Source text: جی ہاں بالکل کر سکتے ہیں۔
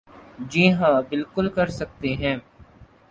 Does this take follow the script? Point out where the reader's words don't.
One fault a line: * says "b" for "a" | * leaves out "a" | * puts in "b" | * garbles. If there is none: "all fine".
all fine